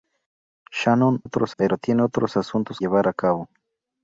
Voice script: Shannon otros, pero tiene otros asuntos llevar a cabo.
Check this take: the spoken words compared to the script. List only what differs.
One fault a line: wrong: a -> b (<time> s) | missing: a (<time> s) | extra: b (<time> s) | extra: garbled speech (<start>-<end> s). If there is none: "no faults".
no faults